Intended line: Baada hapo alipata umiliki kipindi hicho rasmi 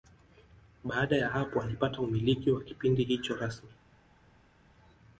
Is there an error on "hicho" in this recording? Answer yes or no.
no